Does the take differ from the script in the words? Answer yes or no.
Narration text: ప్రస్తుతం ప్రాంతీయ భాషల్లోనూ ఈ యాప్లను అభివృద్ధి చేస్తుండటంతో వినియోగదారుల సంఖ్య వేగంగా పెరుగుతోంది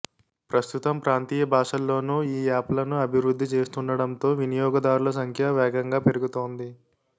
no